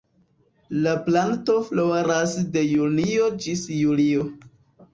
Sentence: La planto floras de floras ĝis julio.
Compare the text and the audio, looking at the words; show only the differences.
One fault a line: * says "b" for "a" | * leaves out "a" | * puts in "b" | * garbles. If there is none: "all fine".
* says "junio" for "floras"